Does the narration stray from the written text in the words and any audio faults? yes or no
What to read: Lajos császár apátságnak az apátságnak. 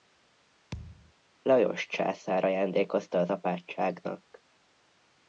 yes